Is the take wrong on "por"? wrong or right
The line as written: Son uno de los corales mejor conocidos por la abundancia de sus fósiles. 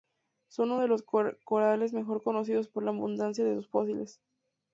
right